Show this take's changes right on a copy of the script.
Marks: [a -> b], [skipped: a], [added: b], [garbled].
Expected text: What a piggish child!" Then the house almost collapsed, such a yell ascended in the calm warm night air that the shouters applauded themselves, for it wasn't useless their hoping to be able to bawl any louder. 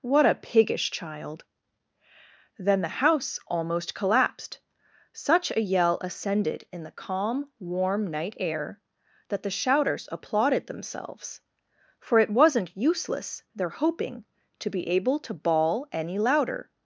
What a piggish child!" Then the house almost collapsed, such a yell ascended in the calm warm night air that the shouters applauded themselves, for it wasn't useless their hoping to be able to bawl any louder.